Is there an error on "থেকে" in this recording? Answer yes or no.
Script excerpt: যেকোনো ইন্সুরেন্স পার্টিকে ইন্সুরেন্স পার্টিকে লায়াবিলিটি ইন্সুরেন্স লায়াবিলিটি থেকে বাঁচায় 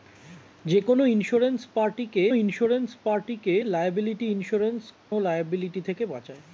no